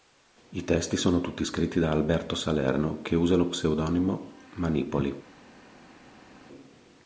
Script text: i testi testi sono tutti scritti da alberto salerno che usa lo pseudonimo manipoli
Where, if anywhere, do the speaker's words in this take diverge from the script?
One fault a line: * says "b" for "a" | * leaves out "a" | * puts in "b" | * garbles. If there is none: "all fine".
* leaves out "testi"